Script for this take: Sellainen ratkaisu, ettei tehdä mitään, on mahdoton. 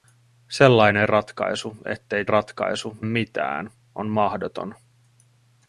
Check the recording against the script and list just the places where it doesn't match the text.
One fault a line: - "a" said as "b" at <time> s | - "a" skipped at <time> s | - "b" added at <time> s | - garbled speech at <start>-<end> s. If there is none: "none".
- "tehdä" said as "ratkaisu" at 2.3 s